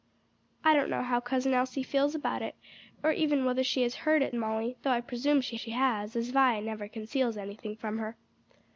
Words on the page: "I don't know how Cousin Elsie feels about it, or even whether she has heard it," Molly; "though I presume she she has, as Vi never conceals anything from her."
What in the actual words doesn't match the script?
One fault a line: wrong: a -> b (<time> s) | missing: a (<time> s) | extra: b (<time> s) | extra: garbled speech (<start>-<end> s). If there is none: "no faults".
no faults